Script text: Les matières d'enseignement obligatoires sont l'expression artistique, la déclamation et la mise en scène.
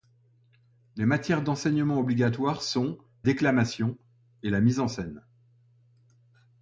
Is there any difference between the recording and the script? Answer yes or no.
yes